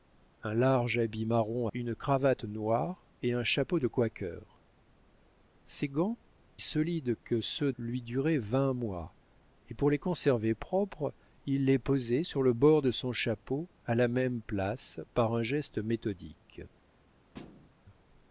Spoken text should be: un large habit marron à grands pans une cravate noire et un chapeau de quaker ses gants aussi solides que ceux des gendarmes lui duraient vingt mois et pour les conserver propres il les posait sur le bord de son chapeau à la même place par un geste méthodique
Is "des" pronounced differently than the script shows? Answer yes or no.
yes